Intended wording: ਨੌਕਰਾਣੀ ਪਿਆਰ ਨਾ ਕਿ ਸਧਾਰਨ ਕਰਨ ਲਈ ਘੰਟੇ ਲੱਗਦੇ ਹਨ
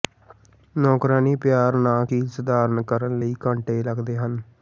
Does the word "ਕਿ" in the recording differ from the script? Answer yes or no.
no